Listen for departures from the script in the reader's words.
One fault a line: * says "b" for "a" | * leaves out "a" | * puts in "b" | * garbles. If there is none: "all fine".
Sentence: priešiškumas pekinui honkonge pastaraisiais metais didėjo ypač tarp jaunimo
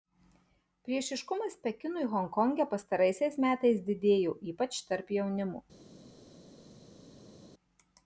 all fine